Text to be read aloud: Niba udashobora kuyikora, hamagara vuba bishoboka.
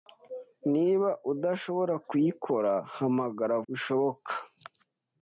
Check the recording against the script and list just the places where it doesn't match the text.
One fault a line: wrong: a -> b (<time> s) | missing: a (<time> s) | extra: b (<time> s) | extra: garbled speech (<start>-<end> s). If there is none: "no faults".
missing: vuba (3.6 s)